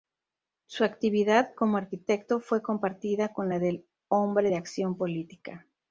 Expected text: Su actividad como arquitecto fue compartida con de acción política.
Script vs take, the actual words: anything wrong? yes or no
yes